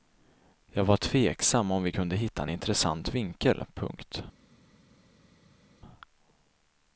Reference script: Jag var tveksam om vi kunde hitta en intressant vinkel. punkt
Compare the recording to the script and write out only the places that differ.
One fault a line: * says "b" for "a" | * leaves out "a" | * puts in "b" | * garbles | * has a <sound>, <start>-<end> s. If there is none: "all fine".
all fine